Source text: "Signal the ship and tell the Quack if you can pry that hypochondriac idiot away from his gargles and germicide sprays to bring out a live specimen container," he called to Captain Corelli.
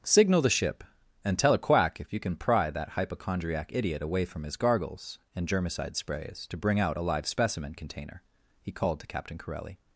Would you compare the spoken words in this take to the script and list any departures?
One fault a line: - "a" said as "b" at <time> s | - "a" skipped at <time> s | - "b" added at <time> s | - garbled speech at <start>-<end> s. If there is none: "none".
- "the" said as "a" at 1.5 s